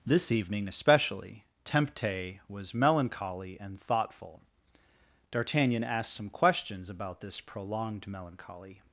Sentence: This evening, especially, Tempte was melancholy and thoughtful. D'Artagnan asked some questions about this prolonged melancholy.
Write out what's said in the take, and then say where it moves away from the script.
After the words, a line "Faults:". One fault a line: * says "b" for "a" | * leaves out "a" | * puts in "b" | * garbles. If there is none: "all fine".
This evening, especially, Tempte was melancholy and thoughtful. D'Artagnan asked some questions about this prolonged melancholy.
Faults:
all fine